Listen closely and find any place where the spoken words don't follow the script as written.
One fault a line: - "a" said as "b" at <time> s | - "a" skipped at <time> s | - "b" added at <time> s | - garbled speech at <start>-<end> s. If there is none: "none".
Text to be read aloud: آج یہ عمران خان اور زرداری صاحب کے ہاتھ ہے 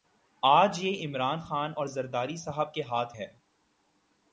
none